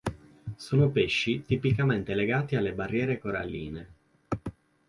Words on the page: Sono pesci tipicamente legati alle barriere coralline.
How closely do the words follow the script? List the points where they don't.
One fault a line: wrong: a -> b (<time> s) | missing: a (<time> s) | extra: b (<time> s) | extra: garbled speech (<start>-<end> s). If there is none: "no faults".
no faults